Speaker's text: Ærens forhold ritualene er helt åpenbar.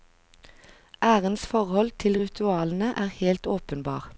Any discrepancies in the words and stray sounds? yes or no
yes